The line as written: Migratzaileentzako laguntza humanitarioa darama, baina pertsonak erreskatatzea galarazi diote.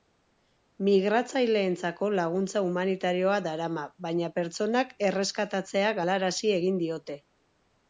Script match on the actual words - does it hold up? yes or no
no